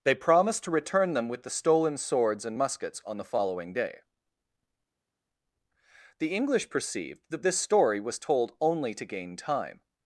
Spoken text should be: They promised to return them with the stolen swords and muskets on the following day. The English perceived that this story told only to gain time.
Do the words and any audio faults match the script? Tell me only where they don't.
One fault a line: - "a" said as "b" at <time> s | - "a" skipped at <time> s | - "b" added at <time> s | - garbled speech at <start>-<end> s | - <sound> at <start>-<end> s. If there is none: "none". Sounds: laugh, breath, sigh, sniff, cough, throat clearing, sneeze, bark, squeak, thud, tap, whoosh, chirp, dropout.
- "was" added at 8.0 s